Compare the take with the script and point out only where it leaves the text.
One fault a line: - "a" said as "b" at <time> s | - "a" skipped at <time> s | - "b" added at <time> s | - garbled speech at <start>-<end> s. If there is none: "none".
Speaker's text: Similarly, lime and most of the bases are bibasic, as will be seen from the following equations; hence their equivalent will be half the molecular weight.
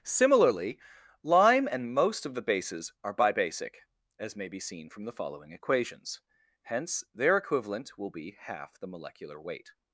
- "will" said as "may" at 4.4 s